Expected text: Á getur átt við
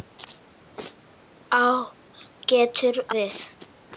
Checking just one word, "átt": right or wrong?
wrong